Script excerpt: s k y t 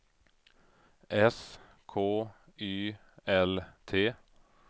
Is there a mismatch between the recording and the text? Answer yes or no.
yes